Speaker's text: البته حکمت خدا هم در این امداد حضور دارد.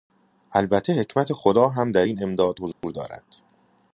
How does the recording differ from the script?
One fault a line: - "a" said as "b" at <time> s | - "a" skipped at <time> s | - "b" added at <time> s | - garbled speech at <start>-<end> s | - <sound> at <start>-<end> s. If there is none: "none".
- dropout at 2.7-2.8 s